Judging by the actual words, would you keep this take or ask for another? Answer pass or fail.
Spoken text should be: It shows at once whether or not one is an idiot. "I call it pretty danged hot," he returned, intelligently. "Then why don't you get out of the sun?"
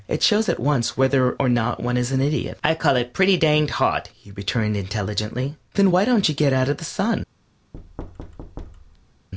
pass